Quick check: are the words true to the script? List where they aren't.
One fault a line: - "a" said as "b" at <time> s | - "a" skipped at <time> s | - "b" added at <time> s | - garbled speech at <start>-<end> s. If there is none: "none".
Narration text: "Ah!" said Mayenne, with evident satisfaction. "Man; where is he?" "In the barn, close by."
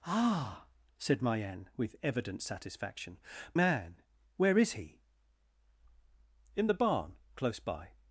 none